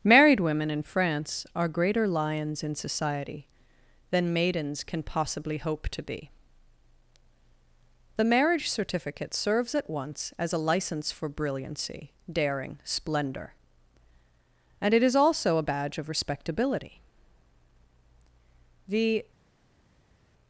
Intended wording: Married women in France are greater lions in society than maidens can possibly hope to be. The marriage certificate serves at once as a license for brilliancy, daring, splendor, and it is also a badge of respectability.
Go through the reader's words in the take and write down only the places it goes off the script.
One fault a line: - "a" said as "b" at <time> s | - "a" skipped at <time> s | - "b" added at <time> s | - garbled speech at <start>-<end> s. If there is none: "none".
- "The" added at 18.9 s